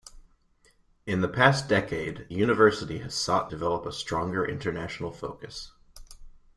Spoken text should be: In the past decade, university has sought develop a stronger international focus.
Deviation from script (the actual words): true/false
false